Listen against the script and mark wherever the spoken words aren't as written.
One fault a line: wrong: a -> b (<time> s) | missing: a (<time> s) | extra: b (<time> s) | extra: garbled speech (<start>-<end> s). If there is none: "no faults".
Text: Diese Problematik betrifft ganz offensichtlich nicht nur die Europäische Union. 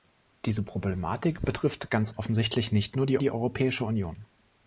extra: die (3.2 s)